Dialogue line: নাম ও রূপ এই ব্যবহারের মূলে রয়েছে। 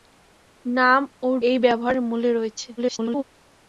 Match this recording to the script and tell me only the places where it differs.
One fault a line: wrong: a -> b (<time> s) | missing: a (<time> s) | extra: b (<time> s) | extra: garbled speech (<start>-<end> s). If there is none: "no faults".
missing: রূপ (1.4 s)
extra: garbled speech (2.8-3.2 s)